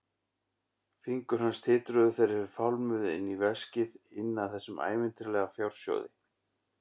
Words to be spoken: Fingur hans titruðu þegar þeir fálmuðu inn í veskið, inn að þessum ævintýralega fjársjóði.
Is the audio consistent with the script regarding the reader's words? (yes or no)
yes